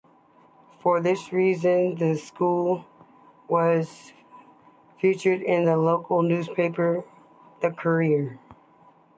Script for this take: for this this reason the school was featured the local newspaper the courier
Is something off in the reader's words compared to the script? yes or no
yes